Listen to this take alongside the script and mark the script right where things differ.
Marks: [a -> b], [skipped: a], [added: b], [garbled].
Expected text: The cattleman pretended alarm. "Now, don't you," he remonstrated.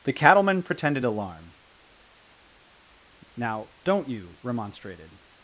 The cattleman pretended alarm. "Now, don't you," [skipped: he] remonstrated.